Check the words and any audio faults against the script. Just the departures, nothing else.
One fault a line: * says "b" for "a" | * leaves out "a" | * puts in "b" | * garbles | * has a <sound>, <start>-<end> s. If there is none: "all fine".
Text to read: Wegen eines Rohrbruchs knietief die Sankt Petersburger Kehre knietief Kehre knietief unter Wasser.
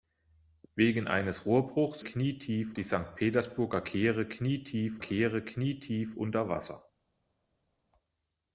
all fine